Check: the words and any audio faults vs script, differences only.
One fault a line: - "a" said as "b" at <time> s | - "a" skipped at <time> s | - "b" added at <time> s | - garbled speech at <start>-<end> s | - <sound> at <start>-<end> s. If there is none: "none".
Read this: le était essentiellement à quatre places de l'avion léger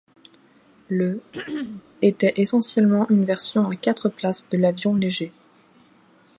- throat clearing at 1.3-1.8 s
- "une version" added at 3.1 s